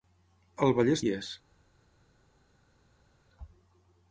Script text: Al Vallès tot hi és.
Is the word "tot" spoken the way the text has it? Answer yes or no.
no